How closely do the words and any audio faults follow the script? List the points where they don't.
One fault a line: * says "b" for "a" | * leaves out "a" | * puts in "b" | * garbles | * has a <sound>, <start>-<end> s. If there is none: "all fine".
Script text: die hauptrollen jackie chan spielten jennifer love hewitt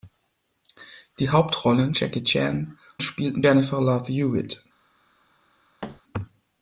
* has a thud, 5.8-6.0 s